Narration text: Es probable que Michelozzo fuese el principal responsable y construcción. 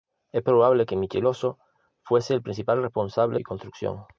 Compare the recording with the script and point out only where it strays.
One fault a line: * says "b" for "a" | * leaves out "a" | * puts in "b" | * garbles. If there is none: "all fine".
all fine